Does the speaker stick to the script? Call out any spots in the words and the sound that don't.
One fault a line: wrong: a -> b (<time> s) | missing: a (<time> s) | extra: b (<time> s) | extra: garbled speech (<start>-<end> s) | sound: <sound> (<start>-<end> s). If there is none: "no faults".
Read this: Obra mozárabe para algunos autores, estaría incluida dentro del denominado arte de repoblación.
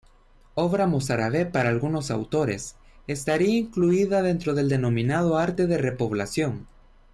no faults